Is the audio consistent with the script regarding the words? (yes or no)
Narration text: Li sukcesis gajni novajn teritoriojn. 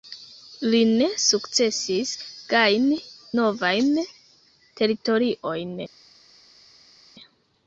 no